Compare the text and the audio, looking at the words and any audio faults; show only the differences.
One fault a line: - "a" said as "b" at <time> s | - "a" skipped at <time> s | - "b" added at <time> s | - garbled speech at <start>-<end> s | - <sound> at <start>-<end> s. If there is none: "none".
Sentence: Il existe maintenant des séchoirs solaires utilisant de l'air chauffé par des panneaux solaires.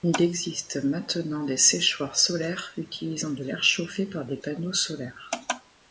none